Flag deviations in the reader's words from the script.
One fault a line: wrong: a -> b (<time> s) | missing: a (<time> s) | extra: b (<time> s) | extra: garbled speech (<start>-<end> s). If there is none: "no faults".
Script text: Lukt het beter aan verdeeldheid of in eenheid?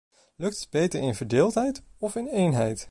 wrong: aan -> in (1.0 s)